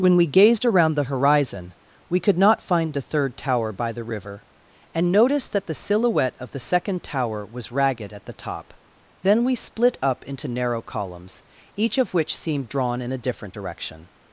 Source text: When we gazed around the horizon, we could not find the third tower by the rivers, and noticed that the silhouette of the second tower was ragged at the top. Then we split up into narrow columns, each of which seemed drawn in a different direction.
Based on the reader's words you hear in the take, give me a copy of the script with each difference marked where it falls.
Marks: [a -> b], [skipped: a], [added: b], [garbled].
When we gazed around the horizon, we could not find the third tower by the [rivers, -> river] and noticed that the silhouette of the second tower was ragged at the top. Then we split up into narrow columns, each of which seemed drawn in a different direction.